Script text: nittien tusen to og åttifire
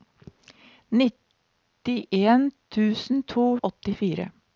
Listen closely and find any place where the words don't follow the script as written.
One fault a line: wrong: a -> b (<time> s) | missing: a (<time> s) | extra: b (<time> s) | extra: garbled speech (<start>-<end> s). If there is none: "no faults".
no faults